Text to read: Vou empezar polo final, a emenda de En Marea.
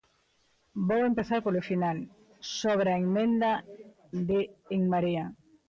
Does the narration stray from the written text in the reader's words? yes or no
yes